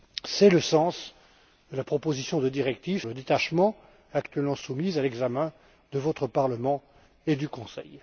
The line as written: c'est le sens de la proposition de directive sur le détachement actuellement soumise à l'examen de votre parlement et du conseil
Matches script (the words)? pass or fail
fail